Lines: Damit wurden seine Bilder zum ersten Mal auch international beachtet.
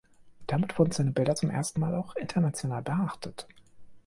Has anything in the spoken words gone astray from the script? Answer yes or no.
no